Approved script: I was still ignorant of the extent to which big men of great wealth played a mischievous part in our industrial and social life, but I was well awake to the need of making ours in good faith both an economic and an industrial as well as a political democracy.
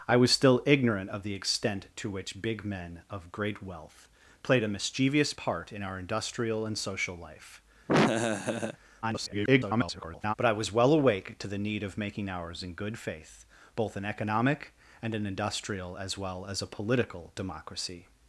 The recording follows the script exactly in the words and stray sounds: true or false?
false